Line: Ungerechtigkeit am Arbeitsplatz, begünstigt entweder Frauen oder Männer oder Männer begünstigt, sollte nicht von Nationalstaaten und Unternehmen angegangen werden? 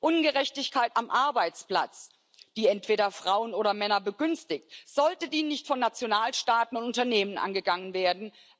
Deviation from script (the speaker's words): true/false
true